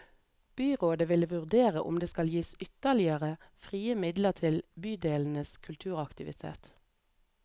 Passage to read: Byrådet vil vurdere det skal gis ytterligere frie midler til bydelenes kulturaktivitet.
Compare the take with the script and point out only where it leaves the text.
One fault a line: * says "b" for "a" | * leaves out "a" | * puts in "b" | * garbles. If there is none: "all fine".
* puts in "om"